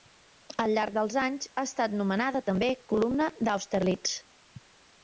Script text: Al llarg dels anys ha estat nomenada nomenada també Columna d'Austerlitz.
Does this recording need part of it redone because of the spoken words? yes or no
yes